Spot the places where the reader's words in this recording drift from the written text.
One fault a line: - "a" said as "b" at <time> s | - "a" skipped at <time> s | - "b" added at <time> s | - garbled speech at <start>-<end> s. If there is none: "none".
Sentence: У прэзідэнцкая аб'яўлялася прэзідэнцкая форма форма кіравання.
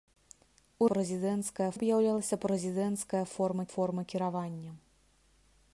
none